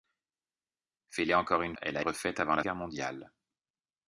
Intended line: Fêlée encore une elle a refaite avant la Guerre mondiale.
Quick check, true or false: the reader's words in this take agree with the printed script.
true